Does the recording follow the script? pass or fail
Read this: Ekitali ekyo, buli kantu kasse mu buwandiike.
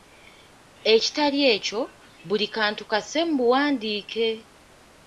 pass